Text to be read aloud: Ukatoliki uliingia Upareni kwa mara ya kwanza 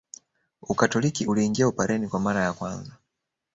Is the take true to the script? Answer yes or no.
yes